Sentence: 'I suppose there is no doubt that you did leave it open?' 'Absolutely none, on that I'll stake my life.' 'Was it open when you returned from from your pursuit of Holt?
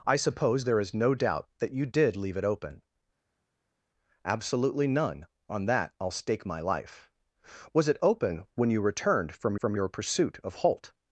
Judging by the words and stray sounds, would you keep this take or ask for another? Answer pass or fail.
pass